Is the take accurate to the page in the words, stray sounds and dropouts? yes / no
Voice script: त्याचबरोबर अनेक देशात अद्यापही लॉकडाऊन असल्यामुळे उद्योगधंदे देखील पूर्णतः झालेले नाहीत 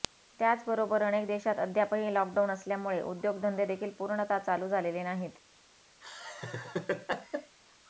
no